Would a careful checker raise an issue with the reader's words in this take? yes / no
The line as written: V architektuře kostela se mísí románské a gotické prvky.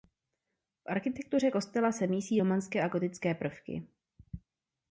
no